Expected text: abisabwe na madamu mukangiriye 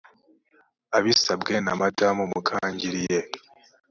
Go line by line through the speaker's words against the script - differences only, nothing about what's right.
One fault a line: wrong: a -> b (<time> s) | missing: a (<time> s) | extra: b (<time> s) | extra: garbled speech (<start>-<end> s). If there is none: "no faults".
no faults